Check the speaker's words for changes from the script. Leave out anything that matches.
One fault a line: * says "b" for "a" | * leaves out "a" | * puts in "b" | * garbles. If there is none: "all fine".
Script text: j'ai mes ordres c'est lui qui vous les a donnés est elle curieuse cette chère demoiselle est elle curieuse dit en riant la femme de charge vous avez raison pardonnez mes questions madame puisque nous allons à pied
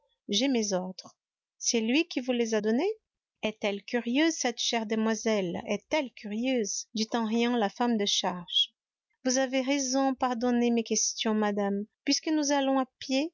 all fine